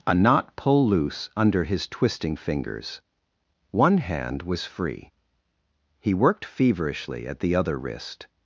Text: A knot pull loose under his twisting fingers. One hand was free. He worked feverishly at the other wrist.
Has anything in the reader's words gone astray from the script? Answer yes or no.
no